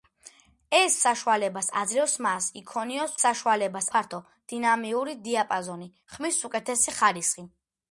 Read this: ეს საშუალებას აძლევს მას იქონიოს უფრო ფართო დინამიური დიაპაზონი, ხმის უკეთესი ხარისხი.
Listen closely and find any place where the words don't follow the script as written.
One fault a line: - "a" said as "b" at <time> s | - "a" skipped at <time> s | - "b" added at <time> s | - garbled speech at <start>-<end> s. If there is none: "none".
- "უფრო" said as "საშუალებას" at 3.2 s